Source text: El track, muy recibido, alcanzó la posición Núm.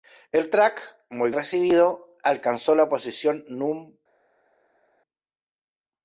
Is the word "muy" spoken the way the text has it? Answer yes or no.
yes